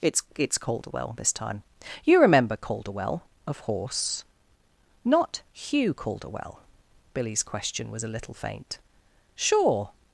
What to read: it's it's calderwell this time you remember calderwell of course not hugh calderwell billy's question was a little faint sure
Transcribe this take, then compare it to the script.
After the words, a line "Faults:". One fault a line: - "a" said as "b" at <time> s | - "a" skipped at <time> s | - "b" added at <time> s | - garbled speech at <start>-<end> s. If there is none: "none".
it's it's calderwell this time you remember calderwell of horse not hugh calderwell billy's question was a little faint sure
Faults:
- "course" said as "horse" at 3.6 s